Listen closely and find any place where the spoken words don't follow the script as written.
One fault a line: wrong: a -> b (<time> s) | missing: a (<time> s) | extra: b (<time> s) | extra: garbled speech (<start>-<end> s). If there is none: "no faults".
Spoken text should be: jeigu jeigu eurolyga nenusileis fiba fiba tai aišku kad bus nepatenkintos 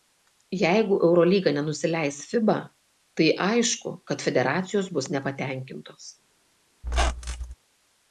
missing: jeigu (0.9 s)
missing: fiba (2.6 s)
extra: federacijos (4.3 s)